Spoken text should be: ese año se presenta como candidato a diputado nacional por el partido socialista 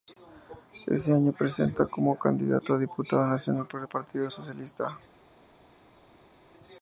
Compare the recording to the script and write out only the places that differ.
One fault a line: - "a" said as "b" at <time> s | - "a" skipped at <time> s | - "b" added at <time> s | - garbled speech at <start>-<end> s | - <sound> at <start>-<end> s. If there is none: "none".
none